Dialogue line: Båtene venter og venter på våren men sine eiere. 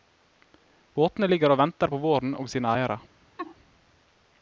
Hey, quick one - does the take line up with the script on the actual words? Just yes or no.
no